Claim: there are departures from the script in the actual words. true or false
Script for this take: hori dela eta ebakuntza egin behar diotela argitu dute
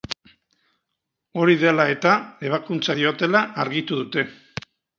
true